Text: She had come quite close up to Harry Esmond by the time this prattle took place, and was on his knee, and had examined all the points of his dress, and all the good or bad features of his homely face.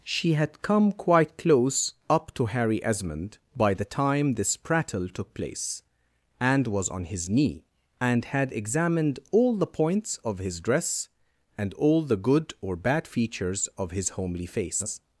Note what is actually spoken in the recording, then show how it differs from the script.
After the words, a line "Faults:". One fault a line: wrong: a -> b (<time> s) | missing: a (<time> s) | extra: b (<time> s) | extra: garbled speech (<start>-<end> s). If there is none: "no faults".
She had come quite close up to Harry Esmond by the time this prattle took place, and was on his knee, and had examined all the points of his dress, and all the good or bad features of his homely face.
Faults:
no faults